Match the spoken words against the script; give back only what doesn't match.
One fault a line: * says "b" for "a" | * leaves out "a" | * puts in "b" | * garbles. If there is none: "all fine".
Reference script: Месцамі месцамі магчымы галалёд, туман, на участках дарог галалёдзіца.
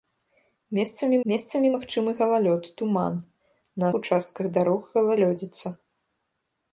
all fine